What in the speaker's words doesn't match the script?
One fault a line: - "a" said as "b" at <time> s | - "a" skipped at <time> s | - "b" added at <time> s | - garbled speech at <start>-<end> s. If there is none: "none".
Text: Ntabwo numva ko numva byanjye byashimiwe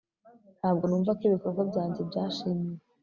- "numva" said as "ibikorwa" at 1.3 s